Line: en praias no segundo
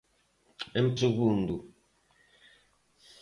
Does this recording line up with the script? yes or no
no